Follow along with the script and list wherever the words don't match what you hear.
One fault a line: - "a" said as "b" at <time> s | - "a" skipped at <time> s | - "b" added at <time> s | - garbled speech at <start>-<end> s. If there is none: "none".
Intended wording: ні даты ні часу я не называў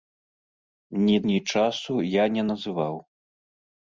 - "даты" skipped at 1.2 s